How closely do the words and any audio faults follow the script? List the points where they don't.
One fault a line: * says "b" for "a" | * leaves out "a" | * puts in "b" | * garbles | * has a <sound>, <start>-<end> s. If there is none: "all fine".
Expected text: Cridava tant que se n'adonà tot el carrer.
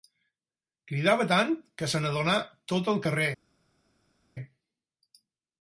all fine